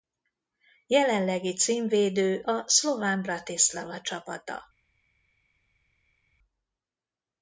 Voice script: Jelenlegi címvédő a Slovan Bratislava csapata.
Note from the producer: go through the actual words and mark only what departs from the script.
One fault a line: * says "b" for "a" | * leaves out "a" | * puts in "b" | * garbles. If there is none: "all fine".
all fine